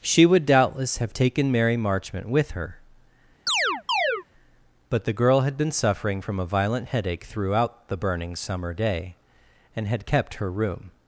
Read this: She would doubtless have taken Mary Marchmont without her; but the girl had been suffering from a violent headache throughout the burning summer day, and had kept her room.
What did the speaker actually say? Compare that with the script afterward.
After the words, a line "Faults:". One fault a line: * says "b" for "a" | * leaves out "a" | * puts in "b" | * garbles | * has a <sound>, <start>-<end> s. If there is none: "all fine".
She would doubtless have taken Mary Marchmont with her; but the girl had been suffering from a violent headache throughout the burning summer day, and had kept her room.
Faults:
* says "with" for "without"
* has a chirp, 3.5-4.2 s